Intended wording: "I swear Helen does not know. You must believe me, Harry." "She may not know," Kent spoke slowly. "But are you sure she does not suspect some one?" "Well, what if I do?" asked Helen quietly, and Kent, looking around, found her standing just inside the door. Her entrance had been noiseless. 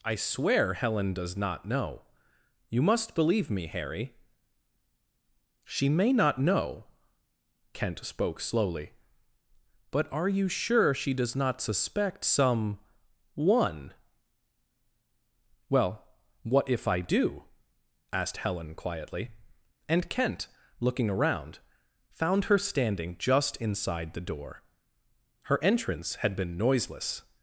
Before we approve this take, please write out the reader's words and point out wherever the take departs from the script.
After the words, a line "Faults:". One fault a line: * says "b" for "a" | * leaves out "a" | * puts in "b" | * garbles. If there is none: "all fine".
"I swear Helen does not know. You must believe me, Harry." "She may not know," Kent spoke slowly. "But are you sure she does not suspect some one?" "Well, what if I do?" asked Helen quietly, and Kent, looking around, found her standing just inside the door. Her entrance had been noiseless.
Faults:
all fine